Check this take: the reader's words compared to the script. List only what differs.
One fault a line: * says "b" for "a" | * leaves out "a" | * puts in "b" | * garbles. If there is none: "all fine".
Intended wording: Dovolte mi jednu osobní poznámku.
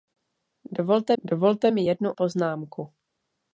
* puts in "dovolte"
* leaves out "osobní"